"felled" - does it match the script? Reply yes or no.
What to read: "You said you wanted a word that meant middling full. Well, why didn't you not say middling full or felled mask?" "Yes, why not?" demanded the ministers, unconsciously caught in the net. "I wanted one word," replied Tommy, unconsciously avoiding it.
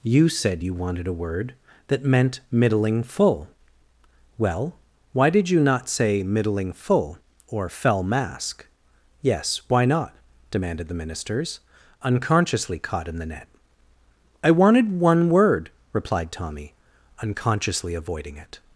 no